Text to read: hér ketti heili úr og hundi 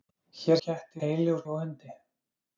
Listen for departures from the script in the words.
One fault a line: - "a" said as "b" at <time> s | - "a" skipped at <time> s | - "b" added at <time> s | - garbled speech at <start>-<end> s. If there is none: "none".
none